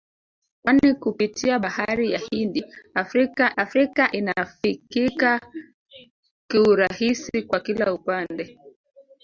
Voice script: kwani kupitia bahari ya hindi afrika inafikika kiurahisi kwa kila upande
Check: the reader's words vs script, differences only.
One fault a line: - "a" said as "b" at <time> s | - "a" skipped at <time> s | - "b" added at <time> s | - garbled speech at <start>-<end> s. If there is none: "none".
- "afrika" added at 3.5 s